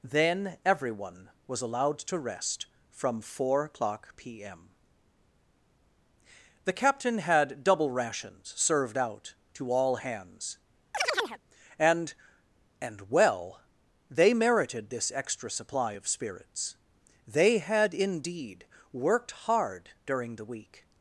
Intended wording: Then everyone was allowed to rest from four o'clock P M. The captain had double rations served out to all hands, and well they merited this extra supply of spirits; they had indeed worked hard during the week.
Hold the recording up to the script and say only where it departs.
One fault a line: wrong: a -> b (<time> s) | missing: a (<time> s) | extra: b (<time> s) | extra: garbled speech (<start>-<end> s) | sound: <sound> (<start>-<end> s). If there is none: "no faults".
sound: chirp (10.9-11.4 s)
extra: and (12.8 s)